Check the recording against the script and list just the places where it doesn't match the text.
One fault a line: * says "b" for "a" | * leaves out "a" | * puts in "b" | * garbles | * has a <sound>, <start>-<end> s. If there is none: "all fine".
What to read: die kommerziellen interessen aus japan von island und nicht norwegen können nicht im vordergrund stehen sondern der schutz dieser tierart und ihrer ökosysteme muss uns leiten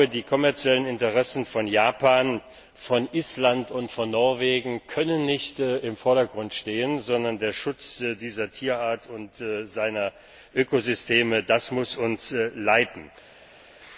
* says "von" for "aus"
* says "von" for "nicht"